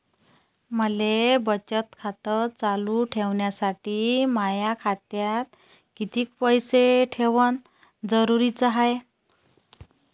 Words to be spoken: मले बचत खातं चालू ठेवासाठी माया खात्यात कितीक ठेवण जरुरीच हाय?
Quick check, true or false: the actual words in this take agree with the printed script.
false